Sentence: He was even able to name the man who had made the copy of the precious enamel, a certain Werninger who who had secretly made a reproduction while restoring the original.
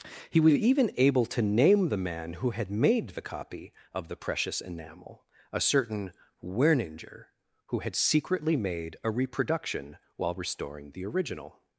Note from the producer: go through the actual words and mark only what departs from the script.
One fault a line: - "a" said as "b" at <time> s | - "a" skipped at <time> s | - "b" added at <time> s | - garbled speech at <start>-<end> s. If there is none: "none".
- "who" skipped at 7.8 s